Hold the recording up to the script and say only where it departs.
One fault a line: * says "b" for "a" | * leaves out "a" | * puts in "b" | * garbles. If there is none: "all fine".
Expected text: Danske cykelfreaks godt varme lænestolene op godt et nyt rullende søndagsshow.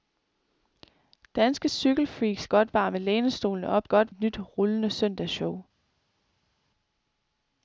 all fine